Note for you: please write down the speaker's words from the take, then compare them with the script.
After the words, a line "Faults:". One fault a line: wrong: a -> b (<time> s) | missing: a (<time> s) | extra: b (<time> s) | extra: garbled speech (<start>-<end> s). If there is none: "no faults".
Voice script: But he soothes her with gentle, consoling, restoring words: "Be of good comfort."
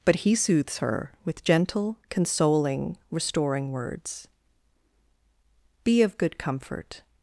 But he soothes her with gentle, consoling, restoring words: "Be of good comfort."
Faults:
no faults